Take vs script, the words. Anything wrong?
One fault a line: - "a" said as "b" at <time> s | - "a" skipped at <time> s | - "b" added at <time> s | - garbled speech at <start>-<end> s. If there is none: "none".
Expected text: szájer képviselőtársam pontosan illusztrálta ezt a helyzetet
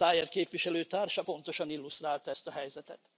none